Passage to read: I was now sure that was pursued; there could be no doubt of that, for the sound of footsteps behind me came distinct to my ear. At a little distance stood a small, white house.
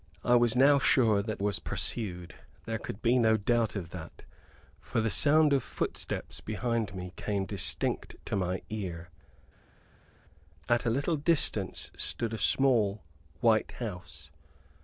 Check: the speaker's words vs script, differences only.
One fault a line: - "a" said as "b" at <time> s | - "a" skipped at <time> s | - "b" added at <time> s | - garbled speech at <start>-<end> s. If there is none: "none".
none